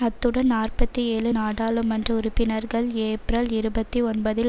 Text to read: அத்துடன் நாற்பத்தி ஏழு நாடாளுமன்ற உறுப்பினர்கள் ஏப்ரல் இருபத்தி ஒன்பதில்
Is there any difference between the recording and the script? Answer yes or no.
no